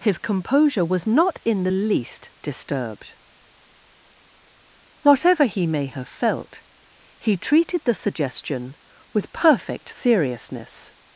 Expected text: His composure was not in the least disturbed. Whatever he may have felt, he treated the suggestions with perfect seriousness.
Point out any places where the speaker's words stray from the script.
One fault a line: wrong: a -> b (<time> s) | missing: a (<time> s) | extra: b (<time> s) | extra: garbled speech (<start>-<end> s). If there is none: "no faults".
wrong: suggestions -> suggestion (7.9 s)